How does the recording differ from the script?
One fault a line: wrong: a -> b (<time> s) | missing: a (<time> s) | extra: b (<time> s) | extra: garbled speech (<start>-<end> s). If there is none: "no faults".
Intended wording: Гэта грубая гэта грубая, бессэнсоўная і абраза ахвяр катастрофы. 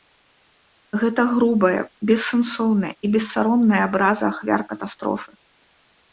missing: гэта грубая (1.8 s)
extra: бессаромная (3.2 s)